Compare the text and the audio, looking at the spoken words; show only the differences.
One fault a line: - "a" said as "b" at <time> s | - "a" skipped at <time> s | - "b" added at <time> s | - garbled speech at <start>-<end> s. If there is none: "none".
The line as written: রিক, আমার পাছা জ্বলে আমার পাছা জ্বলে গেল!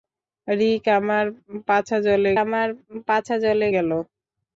none